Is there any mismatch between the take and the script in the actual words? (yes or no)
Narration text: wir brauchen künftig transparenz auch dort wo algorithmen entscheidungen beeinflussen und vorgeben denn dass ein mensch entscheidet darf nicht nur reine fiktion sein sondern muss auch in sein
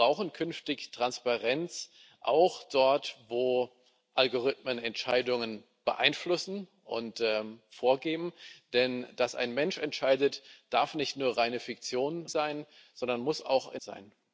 no